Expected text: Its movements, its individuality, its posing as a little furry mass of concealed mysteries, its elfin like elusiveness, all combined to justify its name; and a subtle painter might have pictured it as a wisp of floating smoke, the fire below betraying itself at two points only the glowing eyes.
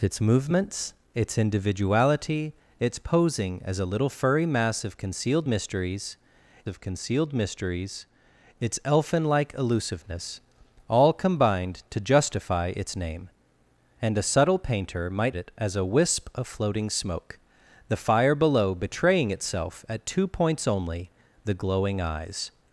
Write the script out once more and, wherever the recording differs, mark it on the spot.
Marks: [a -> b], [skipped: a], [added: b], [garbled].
Its movements, its individuality, its posing as a little furry mass of concealed mysteries, [added: of concealed mysteries] its elfin like elusiveness, all combined to justify its name; and a subtle painter might [skipped: have pictured] it as a wisp of floating smoke, the fire below betraying itself at two points only the glowing eyes.